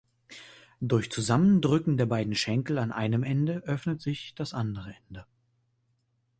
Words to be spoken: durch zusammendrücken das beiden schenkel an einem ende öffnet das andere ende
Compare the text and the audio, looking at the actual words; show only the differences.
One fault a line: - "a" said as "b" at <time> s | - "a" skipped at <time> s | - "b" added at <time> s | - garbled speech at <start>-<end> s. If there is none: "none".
- "das" said as "der" at 1.9 s
- "sich" added at 4.0 s